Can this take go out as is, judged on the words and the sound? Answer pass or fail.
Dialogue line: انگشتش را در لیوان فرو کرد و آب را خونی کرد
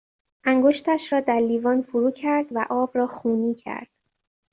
pass